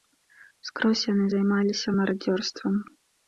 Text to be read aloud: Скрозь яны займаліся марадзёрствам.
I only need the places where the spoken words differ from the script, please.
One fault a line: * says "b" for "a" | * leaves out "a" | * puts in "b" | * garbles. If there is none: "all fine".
all fine